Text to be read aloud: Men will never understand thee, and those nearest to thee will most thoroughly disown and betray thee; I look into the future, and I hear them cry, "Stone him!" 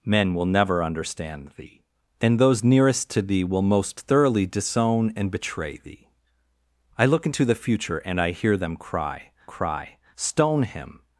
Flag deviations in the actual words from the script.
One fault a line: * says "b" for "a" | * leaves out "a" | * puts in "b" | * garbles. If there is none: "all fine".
* puts in "cry"